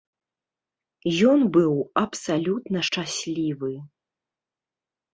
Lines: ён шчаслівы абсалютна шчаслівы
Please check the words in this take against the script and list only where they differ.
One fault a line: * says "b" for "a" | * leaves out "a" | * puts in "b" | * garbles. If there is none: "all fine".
* says "быў" for "шчаслівы"